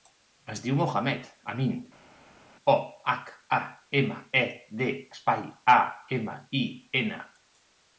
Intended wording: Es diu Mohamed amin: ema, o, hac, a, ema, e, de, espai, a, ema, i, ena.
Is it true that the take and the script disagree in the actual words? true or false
true